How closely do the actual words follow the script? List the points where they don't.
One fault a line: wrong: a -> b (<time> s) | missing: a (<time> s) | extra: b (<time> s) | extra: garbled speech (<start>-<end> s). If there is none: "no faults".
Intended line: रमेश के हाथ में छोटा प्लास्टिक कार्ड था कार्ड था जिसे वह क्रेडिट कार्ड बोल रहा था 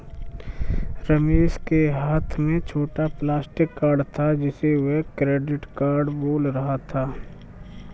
missing: कार्ड था (4.3 s)